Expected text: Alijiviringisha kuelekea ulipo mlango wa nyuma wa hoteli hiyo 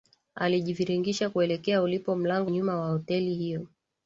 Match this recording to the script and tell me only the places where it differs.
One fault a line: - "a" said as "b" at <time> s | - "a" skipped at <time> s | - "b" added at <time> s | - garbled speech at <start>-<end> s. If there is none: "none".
- "wa" skipped at 2.5 s